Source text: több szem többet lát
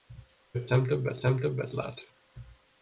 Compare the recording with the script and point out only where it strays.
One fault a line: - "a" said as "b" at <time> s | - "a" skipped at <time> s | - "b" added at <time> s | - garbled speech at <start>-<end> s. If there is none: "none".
- "szem többet" added at 1.2 s